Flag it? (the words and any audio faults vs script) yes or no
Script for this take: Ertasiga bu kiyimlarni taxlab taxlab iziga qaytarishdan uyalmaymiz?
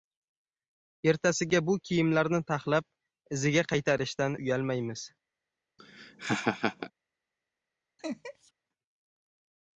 yes